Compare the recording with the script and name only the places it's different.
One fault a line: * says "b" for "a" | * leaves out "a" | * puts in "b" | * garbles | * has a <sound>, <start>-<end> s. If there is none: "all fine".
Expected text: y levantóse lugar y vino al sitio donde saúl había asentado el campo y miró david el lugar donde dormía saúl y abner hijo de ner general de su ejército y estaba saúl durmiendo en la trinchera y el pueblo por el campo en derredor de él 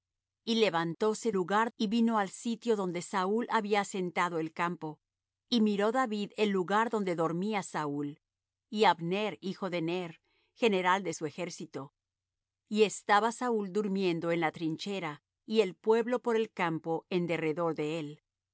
all fine